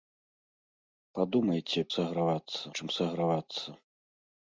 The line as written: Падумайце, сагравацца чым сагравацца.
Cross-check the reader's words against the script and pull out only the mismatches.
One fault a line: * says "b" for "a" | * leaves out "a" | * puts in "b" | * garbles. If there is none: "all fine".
all fine